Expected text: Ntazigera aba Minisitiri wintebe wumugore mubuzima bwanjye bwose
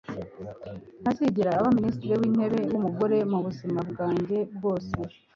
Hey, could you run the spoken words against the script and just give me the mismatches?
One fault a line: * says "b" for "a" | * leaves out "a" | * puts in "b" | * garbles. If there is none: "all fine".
all fine